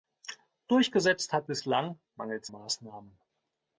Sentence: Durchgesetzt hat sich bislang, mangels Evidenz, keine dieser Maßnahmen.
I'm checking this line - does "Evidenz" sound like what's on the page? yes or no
no